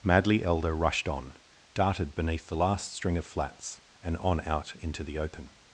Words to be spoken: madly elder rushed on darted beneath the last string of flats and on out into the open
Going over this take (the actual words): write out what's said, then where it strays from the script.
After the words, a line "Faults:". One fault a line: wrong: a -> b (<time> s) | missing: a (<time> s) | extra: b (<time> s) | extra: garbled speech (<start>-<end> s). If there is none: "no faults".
madly elder rushed on darted beneath the last string of flats and on out into the open
Faults:
no faults